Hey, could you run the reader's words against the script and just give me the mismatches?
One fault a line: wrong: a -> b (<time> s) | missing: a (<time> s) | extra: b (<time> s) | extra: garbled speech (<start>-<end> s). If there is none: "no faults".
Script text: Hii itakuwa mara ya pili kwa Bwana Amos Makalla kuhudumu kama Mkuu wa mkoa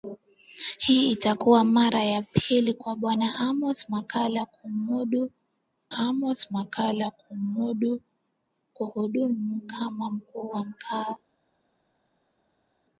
extra: Amos Makalla (5.9 s)